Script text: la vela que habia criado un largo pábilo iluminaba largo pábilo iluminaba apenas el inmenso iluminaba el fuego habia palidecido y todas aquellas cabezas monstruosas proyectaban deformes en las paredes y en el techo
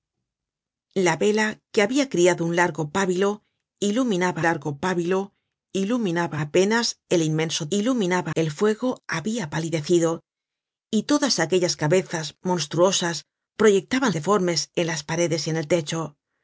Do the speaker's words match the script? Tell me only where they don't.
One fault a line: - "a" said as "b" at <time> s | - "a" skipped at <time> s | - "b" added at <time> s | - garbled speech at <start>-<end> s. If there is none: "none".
none